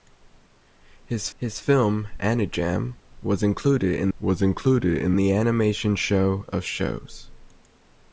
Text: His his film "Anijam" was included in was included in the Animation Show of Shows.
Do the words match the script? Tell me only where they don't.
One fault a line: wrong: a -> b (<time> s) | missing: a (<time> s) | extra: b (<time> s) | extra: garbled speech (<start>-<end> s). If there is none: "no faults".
no faults